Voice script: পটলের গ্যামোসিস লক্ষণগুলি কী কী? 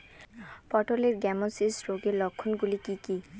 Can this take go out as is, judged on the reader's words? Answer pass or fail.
fail